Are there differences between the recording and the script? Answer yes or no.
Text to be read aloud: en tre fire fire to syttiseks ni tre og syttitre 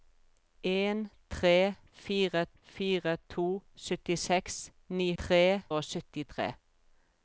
no